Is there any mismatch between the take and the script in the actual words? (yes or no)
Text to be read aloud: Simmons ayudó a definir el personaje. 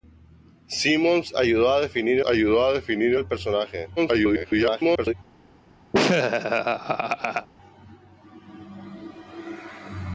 yes